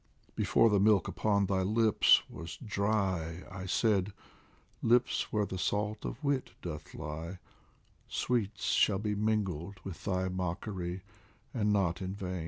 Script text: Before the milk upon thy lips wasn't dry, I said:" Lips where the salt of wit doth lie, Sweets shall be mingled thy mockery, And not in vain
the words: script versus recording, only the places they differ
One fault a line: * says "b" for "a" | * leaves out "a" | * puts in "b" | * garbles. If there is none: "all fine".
* says "was" for "wasn't"
* puts in "with"